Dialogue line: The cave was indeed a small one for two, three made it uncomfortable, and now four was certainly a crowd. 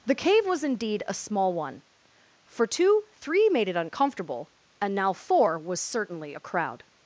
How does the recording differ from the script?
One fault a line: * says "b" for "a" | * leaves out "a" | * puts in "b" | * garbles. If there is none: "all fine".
all fine